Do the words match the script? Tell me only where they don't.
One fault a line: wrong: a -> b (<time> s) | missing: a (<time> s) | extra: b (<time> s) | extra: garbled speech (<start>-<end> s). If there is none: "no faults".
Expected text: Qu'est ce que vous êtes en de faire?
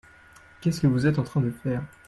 extra: train (1.2 s)